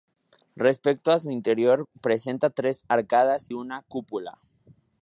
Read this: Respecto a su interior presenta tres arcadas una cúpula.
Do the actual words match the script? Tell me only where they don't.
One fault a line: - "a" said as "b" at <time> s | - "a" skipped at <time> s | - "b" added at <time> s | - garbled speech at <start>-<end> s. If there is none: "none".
none